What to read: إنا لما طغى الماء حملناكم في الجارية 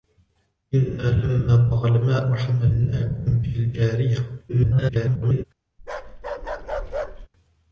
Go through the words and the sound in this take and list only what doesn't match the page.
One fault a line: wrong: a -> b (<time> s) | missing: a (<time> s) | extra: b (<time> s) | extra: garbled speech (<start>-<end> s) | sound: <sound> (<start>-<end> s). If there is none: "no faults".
extra: garbled speech (4.5-5.4 s)
sound: bark (5.8-7.3 s)